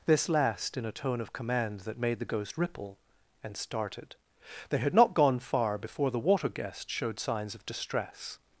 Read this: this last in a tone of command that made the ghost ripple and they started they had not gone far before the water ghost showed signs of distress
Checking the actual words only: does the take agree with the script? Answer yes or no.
no